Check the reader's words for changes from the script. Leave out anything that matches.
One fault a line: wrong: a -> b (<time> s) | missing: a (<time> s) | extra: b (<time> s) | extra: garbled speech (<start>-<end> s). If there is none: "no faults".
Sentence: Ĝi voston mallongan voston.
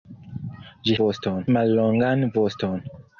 no faults